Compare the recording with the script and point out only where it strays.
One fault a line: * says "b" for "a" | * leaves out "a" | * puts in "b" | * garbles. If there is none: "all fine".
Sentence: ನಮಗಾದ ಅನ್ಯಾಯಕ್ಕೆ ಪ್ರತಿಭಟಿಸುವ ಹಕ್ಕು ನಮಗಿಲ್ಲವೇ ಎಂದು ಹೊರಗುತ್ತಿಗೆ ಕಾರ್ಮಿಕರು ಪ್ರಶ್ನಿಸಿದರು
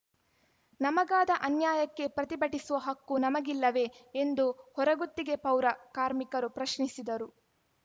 * puts in "ಪೌರ"